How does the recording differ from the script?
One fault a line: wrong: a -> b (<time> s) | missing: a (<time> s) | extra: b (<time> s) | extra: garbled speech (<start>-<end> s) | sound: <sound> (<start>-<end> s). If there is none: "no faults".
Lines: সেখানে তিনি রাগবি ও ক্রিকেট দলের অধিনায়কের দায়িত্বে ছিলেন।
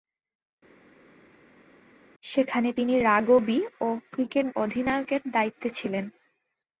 missing: দলের (4.5 s)